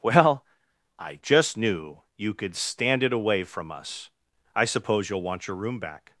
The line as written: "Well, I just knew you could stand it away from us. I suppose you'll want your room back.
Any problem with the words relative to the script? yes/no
no